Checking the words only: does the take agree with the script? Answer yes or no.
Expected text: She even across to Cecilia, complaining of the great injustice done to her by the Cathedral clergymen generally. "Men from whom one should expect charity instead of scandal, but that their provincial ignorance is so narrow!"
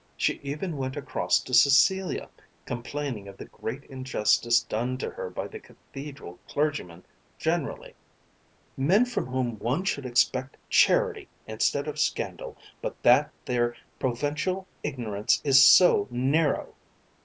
no